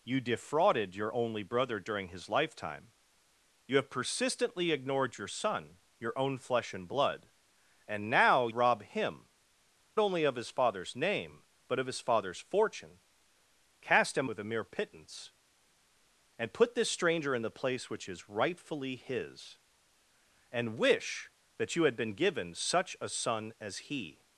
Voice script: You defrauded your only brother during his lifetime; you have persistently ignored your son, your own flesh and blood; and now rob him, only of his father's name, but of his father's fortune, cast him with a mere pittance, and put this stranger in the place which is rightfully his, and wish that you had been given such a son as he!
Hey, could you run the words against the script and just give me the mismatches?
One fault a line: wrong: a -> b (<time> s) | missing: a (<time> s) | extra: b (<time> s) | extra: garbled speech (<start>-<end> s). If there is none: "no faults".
no faults